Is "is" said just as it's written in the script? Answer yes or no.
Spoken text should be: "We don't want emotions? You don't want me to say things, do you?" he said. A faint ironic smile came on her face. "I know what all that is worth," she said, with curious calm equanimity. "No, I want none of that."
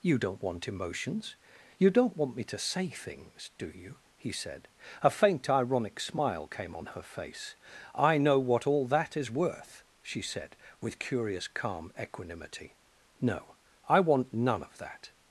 yes